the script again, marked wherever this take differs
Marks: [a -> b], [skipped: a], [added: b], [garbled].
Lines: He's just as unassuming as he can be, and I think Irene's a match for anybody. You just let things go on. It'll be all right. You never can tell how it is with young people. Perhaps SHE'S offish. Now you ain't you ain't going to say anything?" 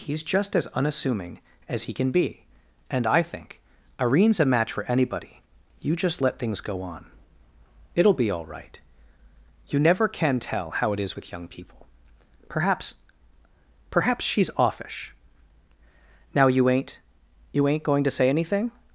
He's just as unassuming as he can be, and I think Irene's a match for anybody. You just let things go on. It'll be all right. You never can tell how it is with young people. Perhaps [added: Perhaps] SHE'S offish. Now you ain't you ain't going to say anything?"